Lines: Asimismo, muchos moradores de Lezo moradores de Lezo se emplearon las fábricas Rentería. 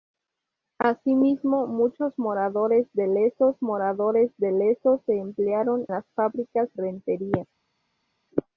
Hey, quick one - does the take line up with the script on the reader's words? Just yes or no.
yes